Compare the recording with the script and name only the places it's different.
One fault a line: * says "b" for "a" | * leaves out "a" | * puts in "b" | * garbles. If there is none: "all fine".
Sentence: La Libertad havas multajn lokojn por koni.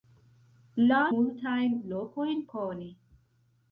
* leaves out "Libertad havas"
* leaves out "por"